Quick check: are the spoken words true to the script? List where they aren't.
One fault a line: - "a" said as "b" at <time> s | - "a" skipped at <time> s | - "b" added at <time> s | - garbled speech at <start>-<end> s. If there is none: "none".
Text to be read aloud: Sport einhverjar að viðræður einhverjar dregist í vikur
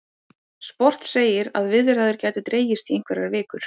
- "einhverjar" said as "segir" at 1.1 s
- "einhverjar" said as "gætu" at 2.3 s
- "einhverjar" added at 3.0 s